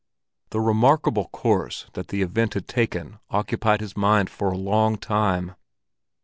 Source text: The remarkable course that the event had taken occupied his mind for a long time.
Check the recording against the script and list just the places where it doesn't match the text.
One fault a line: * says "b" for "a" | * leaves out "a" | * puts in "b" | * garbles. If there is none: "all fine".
all fine